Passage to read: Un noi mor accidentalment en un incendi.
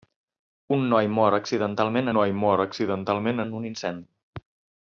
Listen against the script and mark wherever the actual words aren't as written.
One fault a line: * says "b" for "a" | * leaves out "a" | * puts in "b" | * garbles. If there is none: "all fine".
* puts in "noi mor accidentalment"